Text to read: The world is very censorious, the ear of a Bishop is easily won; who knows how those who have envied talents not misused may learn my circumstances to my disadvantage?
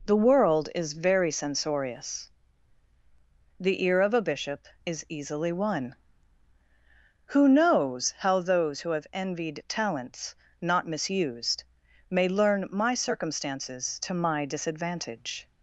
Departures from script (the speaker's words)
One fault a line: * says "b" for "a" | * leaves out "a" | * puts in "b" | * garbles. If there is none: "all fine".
all fine